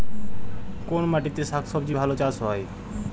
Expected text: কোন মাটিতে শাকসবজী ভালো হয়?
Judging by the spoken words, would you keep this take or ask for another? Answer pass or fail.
fail